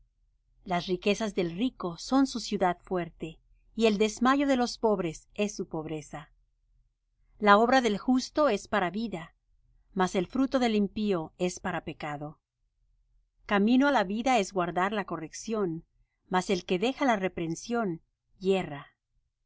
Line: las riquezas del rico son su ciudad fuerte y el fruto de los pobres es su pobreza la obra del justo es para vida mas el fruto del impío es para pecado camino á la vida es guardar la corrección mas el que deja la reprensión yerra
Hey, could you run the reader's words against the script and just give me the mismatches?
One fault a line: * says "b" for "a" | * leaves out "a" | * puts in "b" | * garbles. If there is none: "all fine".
* says "desmayo" for "fruto"